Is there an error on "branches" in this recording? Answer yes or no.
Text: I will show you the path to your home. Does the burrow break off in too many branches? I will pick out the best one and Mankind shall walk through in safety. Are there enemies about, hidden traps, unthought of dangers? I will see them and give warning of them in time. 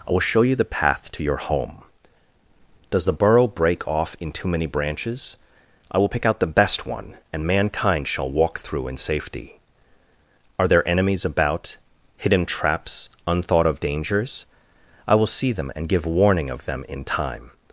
no